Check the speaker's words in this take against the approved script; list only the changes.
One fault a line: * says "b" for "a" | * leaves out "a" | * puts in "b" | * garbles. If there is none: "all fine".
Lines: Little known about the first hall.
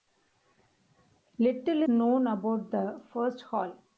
all fine